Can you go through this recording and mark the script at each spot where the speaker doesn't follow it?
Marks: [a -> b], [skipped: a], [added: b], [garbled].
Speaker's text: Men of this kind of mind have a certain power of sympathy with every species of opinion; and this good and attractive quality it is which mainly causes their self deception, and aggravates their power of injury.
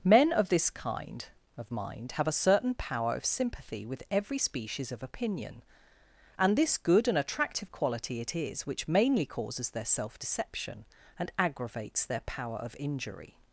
Men of this kind of mind have a certain power of sympathy with every species of opinion; and this good and attractive quality it is which mainly causes their self deception, and aggravates their power of injury.